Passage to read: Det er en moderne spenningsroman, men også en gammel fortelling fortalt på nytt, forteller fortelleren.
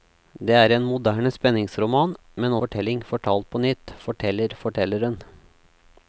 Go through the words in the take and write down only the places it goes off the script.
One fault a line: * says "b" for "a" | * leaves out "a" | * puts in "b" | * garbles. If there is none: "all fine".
* leaves out "også en gammel"